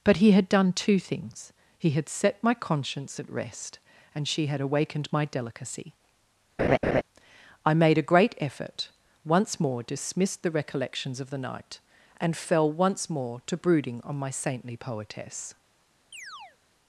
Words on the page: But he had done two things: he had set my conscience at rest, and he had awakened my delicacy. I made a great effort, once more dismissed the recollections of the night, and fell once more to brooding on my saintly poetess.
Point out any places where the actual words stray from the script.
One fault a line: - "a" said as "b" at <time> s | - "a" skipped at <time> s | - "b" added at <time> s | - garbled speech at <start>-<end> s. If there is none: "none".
- "he" said as "she" at 4.3 s